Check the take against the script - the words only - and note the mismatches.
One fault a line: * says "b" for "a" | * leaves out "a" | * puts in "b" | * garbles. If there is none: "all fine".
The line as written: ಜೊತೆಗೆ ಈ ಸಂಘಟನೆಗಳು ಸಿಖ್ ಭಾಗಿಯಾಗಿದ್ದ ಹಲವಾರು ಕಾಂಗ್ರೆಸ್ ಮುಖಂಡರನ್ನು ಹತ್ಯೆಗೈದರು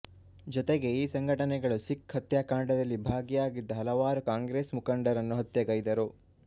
* puts in "ಹತ್ಯಾಕಾಂಡದಲ್ಲಿ"